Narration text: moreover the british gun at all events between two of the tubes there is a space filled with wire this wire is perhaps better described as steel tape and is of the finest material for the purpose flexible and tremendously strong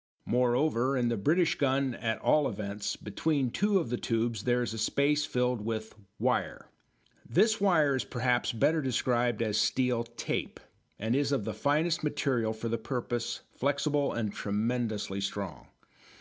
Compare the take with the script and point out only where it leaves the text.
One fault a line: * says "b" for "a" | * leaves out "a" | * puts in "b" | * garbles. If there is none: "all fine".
* puts in "in"